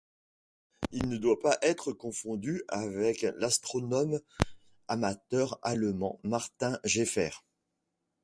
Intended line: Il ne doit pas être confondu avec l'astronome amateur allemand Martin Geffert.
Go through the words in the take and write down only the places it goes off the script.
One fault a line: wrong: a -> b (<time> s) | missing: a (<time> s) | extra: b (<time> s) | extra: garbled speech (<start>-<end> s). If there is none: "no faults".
no faults